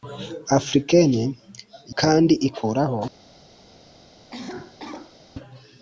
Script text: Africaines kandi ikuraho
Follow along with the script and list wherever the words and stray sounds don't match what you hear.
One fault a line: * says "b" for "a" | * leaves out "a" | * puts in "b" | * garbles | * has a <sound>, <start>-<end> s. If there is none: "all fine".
* has a cough, 4.3-5.2 s